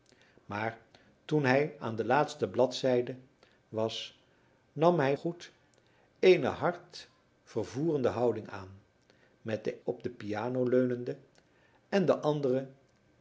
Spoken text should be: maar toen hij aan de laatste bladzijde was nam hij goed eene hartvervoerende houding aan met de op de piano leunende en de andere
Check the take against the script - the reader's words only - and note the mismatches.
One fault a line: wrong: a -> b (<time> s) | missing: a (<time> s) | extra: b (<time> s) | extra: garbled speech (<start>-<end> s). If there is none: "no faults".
no faults